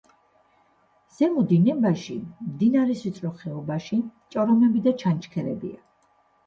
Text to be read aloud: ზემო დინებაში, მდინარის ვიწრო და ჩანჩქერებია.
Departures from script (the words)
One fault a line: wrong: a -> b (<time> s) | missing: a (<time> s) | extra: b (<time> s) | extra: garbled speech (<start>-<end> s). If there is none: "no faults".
extra: ხეობაში ჭორომები (3.4 s)